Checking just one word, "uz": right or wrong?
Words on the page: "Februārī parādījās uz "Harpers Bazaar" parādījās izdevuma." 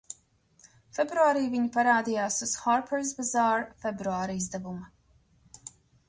right